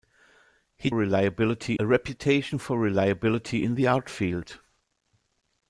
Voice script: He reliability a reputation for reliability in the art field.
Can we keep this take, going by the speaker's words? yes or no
yes